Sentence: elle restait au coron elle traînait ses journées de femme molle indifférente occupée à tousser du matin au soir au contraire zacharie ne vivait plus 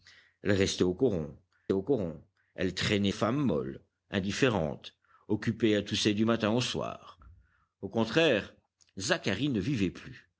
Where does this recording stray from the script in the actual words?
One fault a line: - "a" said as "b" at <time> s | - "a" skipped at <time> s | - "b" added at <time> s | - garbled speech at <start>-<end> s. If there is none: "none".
- "au coron" added at 1.7 s
- "ses journées de" skipped at 3.1 s